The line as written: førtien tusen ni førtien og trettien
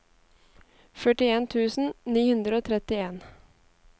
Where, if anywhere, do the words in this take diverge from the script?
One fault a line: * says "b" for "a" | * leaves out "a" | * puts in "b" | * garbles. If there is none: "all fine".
* says "hundre" for "førtien"